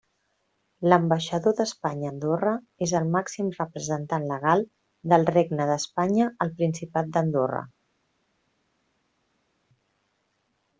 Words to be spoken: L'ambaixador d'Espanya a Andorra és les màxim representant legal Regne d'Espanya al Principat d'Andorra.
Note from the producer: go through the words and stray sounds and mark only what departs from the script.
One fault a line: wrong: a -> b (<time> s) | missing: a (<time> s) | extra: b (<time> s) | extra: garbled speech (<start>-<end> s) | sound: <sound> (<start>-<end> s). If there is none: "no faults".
wrong: les -> el (3.0 s)
extra: del (5.1 s)